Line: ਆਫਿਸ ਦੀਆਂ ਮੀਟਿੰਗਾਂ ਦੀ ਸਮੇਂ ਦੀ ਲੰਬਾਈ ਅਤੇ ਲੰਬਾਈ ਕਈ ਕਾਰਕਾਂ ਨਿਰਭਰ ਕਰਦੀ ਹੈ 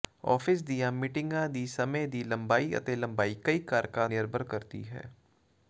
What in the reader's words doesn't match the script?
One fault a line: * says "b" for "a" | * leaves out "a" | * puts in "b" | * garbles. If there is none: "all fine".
all fine